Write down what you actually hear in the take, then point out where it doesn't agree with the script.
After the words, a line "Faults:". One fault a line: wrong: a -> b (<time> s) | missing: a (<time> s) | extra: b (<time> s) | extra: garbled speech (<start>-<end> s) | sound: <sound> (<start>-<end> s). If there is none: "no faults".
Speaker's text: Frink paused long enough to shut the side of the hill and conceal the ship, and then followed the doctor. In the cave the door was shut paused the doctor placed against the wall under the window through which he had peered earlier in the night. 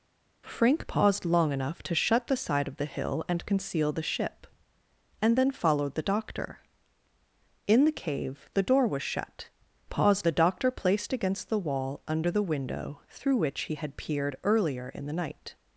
Frink paused long enough to shut the side of the hill and conceal the ship, and then followed the doctor. In the cave the door was shut paused the doctor placed against the wall under the window through which he had peered earlier in the night.
Faults:
no faults